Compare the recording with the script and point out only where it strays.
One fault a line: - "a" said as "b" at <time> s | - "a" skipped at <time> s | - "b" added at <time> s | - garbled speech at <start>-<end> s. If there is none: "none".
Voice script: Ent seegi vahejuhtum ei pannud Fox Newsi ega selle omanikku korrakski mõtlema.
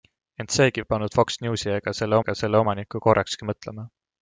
- "vahejuhtum" skipped at 0.8 s
- "ega selle" added at 2.2 s